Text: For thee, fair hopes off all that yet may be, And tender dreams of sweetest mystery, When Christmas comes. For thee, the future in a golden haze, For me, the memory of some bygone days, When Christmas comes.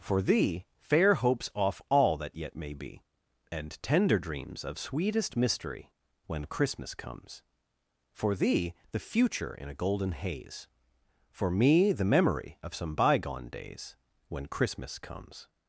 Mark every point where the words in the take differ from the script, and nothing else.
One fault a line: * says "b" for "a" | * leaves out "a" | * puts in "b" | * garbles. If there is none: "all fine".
all fine